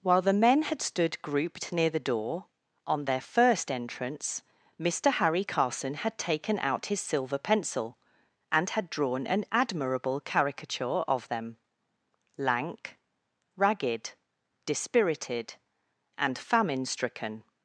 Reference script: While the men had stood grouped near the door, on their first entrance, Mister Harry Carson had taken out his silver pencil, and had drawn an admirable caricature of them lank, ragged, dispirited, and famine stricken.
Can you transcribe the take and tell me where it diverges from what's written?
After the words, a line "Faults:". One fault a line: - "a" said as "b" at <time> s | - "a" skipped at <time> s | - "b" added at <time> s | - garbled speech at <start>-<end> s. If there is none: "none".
While the men had stood grouped near the door, on their first entrance, Mister Harry Carson had taken out his silver pencil, and had drawn an admirable caricature of them lank, ragged, dispirited, and famine stricken.
Faults:
none